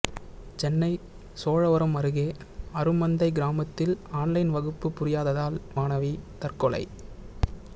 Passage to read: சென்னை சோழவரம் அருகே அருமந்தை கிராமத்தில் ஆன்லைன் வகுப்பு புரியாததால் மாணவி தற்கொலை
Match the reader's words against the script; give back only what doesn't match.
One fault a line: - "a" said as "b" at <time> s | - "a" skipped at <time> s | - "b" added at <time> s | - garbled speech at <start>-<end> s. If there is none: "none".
none